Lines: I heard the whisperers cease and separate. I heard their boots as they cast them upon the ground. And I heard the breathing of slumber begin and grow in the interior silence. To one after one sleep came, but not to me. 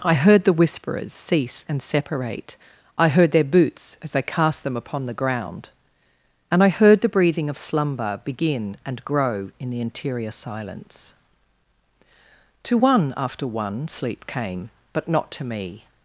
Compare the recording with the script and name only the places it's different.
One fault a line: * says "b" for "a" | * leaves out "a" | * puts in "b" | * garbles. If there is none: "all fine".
all fine